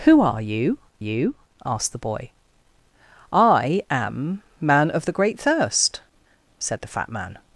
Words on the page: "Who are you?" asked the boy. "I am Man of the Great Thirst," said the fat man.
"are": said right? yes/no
yes